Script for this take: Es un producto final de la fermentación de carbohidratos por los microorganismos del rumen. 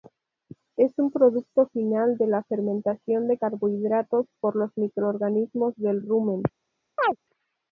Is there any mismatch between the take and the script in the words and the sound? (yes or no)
yes